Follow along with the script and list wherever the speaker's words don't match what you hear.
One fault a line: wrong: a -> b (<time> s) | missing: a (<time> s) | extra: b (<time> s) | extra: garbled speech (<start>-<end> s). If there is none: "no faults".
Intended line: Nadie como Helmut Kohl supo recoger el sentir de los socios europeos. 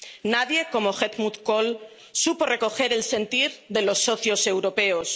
no faults